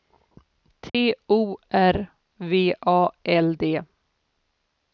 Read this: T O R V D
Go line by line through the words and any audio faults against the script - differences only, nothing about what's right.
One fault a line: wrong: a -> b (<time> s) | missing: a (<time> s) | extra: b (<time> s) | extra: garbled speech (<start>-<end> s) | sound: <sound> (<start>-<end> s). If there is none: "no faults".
sound: dropout (0.9-0.9 s)
extra: A L (2.8 s)